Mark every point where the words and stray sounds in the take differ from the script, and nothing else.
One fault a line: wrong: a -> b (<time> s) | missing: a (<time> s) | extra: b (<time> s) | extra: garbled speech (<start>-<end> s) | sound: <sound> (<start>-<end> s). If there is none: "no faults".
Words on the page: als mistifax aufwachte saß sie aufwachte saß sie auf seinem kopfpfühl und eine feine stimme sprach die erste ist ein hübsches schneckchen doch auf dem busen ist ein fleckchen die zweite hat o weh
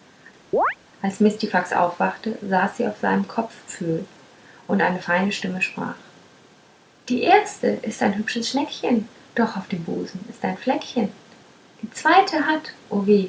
sound: chirp (0.5-0.8 s)
missing: aufwachte saß sie (2.9 s)